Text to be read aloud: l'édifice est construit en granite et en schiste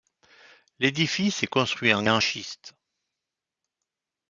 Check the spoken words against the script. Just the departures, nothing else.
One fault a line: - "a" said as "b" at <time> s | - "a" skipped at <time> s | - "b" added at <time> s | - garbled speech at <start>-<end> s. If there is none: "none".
- "granite et" skipped at 2.0 s